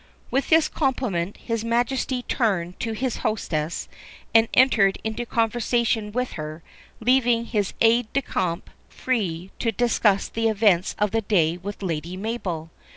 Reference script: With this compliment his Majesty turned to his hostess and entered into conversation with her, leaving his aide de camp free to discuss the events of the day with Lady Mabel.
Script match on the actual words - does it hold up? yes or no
yes